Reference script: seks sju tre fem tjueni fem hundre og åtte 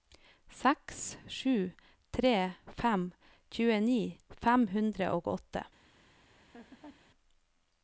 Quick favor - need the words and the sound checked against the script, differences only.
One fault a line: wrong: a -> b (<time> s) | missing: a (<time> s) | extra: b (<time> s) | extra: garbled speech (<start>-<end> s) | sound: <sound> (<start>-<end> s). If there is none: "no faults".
sound: laugh (6.3-7.1 s)